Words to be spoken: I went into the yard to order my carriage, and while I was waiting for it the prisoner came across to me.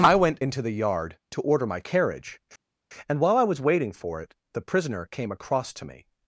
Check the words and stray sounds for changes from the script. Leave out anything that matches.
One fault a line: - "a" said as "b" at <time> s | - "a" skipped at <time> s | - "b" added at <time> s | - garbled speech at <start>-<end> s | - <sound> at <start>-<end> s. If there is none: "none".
none